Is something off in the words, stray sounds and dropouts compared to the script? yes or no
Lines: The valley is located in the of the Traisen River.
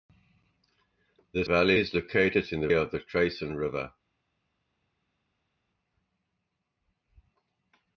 no